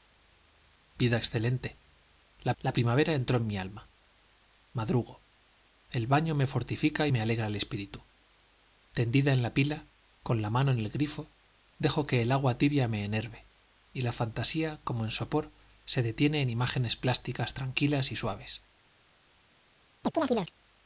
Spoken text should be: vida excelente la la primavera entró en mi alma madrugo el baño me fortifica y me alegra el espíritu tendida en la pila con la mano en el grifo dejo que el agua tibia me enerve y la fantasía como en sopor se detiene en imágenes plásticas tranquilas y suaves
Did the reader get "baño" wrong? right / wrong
right